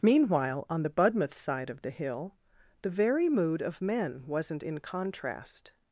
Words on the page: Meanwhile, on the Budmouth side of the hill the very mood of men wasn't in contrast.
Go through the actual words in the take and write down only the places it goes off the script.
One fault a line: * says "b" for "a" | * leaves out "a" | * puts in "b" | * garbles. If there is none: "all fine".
all fine